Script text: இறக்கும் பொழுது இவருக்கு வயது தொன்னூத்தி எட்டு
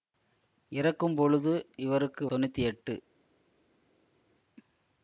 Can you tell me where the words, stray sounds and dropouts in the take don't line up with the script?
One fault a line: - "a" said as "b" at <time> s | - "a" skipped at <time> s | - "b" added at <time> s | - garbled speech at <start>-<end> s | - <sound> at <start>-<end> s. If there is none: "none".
- "வயது" skipped at 2.2 s